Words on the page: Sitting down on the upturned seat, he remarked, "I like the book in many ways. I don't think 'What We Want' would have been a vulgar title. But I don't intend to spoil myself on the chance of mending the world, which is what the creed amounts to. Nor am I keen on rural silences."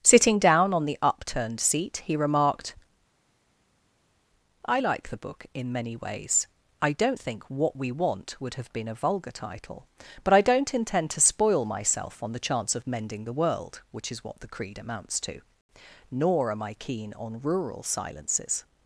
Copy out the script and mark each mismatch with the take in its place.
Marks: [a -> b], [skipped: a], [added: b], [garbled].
Sitting down on the upturned seat, he remarked, "I like the book in many ways. I don't think 'What We Want' would have been a vulgar title. But I don't intend to spoil myself on the chance of mending the world, which is what the creed amounts to. Nor am I keen on rural silences."